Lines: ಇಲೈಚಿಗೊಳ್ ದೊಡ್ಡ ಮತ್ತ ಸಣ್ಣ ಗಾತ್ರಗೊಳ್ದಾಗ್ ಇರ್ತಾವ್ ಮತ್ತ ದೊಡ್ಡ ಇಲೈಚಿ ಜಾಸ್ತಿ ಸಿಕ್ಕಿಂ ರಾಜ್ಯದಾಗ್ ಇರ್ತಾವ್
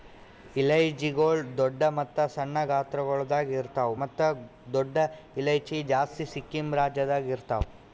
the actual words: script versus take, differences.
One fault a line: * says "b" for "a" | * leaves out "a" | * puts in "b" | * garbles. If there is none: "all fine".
all fine